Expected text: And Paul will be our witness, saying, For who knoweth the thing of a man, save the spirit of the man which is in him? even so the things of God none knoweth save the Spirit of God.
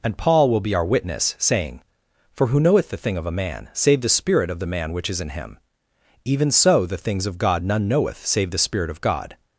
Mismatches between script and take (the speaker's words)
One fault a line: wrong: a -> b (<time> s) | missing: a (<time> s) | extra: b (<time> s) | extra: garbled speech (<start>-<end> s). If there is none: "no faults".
no faults